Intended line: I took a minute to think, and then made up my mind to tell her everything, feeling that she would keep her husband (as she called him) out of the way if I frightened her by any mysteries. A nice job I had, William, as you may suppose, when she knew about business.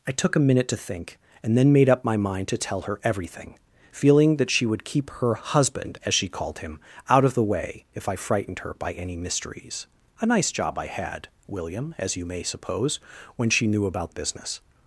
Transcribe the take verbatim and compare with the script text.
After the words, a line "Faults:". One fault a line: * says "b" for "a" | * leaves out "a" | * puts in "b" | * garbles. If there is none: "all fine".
I took a minute to think, and then made up my mind to tell her everything, feeling that she would keep her husband (as she called him) out of the way if I frightened her by any mysteries. A nice job I had, William, as you may suppose, when she knew about business.
Faults:
all fine